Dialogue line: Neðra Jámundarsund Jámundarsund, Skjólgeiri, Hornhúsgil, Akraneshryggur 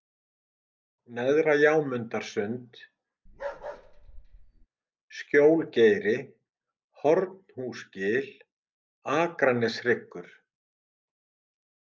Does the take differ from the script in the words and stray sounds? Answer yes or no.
yes